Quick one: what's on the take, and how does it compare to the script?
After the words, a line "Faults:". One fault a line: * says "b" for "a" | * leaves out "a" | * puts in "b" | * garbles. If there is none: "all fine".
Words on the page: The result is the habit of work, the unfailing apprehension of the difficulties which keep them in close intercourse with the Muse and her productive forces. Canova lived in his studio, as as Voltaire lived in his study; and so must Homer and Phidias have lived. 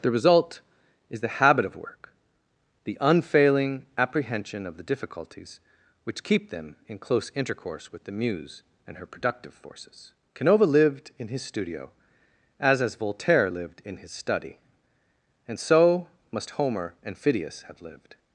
The result is the habit of work, the unfailing apprehension of the difficulties which keep them in close intercourse with the Muse and her productive forces. Canova lived in his studio, as as Voltaire lived in his study; and so must Homer and Phidias have lived.
Faults:
all fine